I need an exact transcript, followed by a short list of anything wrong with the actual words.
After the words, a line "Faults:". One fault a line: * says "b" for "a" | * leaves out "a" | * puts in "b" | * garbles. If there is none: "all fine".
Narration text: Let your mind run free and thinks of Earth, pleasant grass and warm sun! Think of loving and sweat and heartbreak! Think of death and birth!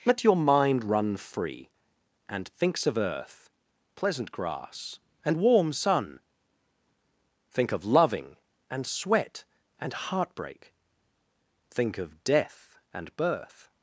Let your mind run free and thinks of Earth, pleasant grass and warm sun! Think of loving and sweat and heartbreak! Think of death and birth!
Faults:
all fine